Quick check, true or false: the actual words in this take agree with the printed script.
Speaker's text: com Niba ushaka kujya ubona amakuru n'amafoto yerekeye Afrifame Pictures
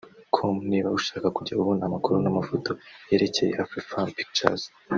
true